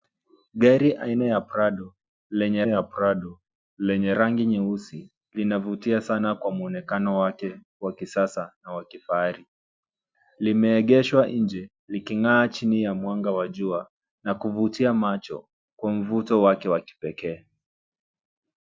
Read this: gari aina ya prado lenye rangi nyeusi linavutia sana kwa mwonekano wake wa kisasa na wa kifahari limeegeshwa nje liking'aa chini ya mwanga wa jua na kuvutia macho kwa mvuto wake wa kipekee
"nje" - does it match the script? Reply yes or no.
yes